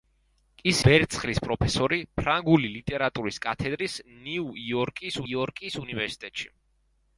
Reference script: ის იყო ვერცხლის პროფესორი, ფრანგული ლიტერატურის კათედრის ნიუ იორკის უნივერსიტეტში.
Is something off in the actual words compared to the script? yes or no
yes